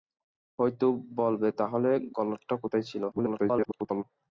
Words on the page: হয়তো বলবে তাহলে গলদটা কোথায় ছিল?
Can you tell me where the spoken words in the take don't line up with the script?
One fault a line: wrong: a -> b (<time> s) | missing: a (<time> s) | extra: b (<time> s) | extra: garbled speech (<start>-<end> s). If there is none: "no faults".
extra: garbled speech (3.1-4.0 s)